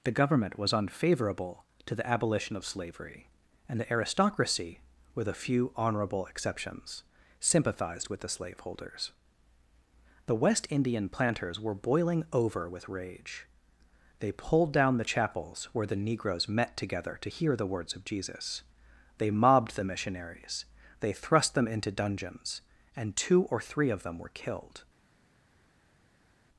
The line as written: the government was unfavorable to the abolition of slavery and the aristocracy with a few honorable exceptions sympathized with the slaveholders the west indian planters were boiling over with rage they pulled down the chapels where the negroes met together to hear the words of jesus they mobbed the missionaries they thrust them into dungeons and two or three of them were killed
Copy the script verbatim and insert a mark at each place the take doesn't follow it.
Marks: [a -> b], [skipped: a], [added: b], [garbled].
the government was unfavorable to the abolition of slavery and the aristocracy with a few honorable exceptions sympathized with the slaveholders the west indian planters were boiling over with rage they pulled down the chapels where the negroes met together to hear the words of jesus they mobbed the missionaries they thrust them into dungeons and two or three of them were killed